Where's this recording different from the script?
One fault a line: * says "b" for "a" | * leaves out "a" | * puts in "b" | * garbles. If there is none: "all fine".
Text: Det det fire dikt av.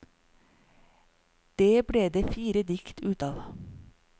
* puts in "ble"
* puts in "ut"